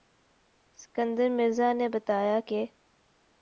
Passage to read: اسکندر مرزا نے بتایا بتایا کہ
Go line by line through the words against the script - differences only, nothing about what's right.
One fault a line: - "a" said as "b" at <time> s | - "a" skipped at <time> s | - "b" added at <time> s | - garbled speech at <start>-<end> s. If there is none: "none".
- "بتایا" skipped at 2.4 s